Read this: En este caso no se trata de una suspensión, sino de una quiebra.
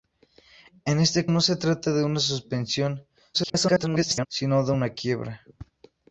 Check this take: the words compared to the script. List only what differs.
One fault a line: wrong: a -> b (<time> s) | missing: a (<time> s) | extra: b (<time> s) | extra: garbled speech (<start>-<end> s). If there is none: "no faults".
missing: caso (1.3 s)
extra: garbled speech (3.3-4.3 s)